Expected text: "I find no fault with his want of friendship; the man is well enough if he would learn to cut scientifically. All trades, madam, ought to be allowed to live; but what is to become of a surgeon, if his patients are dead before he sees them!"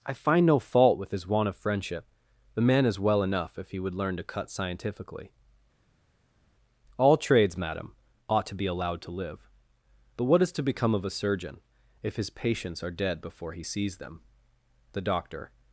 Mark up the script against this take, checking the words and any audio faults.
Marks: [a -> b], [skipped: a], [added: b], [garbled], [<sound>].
"I find no fault with his want of friendship; the man is well enough if he would learn to cut scientifically. All trades, madam, ought to be allowed to live; but what is to become of a surgeon, if his patients are dead before he sees them!" [added: The doctor]